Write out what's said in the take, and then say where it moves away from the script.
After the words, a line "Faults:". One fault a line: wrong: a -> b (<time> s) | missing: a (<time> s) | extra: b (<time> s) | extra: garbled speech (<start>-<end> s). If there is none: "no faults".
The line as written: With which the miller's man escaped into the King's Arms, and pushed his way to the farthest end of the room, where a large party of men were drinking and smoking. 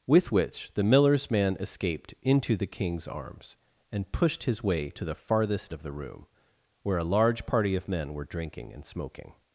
With which the miller's man escaped into the King's Arms, and pushed his way to the farthest of the room, where a large party of men were drinking and smoking.
Faults:
missing: end (5.7 s)